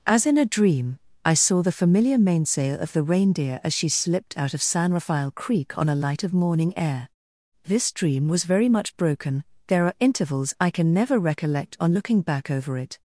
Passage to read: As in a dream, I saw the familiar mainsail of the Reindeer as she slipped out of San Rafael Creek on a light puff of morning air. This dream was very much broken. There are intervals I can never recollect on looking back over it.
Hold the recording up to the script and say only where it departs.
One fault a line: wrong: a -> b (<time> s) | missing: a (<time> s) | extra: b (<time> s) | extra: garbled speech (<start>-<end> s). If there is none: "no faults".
missing: puff (6.2 s)